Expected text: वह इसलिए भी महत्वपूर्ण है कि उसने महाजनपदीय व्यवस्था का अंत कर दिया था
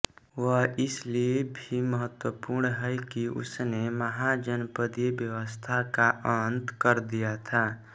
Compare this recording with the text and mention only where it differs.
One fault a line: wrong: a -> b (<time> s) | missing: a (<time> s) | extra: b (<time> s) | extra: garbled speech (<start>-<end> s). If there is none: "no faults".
no faults